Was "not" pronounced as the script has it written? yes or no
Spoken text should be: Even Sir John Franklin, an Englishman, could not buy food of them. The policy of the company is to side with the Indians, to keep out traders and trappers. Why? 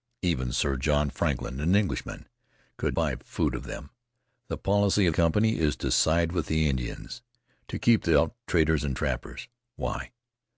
no